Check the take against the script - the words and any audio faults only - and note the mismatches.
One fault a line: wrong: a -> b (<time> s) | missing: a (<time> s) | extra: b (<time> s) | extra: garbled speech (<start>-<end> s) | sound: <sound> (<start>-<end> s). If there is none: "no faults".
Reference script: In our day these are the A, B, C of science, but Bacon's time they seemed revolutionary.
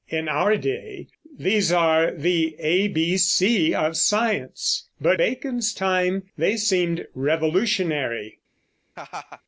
sound: laugh (9.0-9.4 s)